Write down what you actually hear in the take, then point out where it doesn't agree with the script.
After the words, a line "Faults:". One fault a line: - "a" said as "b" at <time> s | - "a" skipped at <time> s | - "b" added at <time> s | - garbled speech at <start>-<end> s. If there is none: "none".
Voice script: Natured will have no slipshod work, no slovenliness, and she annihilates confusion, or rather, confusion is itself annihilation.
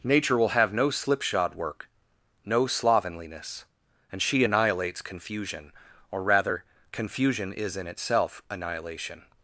Nature will have no slipshod work, no slovenliness, and she annihilates confusion, or rather, confusion is in itself annihilation.
Faults:
- "Natured" said as "Nature" at 0.0 s
- "in" added at 7.8 s